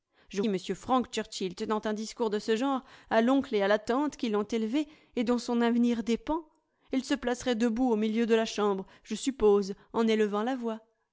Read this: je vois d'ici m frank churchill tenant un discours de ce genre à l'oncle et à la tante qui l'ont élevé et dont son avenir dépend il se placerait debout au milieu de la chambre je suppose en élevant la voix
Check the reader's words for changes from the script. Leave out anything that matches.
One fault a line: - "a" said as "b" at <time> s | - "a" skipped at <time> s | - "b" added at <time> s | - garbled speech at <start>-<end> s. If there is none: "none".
- "vois d'ici" skipped at 0.4 s